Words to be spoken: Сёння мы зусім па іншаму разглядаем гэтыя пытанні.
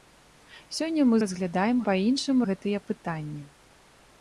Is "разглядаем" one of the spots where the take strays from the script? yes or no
yes